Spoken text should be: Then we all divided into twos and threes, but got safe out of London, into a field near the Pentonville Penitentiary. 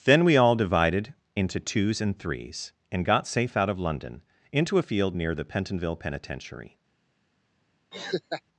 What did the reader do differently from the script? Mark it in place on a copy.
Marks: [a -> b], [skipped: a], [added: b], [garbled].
Then we all divided into twos and threes, [but -> and] got safe out of London, into a field near the Pentonville Penitentiary.